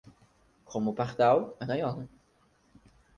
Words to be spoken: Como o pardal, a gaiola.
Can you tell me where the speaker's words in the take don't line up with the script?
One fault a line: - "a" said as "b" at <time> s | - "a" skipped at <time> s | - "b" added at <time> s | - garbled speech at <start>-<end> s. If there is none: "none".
none